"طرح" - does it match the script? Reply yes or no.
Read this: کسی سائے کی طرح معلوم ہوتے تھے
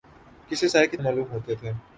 no